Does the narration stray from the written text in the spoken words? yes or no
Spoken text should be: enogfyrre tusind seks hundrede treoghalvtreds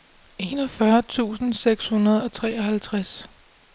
yes